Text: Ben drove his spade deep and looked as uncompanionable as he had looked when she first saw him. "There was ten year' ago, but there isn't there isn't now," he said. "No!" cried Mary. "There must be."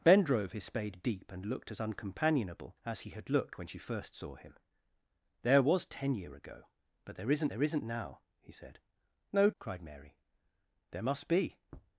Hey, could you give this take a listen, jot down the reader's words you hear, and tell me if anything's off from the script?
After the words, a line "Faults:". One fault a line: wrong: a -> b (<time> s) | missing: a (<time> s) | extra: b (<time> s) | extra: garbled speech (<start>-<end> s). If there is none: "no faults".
Ben drove his spade deep and looked as uncompanionable as he had looked when she first saw him. "There was ten year' ago, but there isn't there isn't now," he said. "No!" cried Mary. "There must be."
Faults:
no faults